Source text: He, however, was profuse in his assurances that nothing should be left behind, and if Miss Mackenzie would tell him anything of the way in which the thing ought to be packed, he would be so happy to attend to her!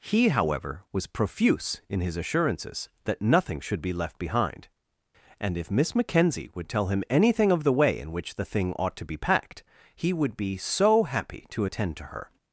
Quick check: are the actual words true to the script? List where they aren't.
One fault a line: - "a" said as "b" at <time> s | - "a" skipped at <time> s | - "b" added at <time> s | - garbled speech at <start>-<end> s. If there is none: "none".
none